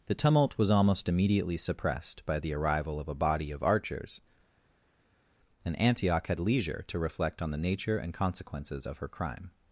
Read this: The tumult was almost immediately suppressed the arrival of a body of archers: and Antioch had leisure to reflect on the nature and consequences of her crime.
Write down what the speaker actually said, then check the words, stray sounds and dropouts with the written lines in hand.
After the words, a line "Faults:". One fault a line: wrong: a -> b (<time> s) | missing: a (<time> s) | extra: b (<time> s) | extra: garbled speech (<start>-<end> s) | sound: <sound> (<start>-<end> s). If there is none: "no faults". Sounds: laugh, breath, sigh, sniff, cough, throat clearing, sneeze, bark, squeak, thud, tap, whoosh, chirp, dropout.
The tumult was almost immediately suppressed by the arrival of a body of archers: and Antioch had leisure to reflect on the nature and consequences of her crime.
Faults:
extra: by (2.2 s)